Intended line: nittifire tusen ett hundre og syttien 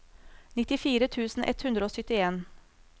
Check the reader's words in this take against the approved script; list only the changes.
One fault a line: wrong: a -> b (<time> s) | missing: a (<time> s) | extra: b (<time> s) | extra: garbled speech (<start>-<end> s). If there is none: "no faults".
no faults